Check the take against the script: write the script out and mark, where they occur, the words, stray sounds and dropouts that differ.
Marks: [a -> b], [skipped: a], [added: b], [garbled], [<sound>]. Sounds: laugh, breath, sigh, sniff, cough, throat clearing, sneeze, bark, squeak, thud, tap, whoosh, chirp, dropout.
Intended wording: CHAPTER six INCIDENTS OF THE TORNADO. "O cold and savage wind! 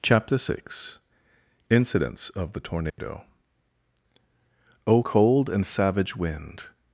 CHAPTER six INCIDENTS OF THE TORNADO. [dropout] "O cold and savage wind!